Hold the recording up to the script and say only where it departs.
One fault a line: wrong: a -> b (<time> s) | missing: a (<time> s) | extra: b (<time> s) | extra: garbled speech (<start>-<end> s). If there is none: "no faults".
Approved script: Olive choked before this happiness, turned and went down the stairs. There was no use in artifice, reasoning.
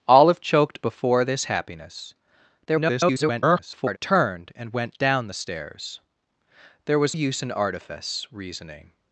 extra: garbled speech (2.7-4.0 s)
missing: no (7.2 s)